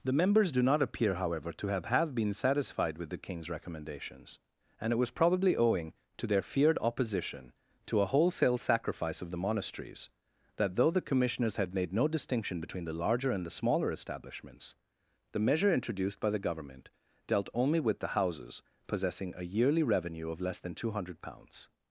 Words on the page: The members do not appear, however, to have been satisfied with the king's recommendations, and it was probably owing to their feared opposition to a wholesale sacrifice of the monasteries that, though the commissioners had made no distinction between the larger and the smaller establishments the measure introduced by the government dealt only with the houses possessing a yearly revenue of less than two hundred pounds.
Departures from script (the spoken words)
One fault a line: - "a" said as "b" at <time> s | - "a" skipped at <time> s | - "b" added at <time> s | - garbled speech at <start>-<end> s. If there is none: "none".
- "have" added at 1.9 s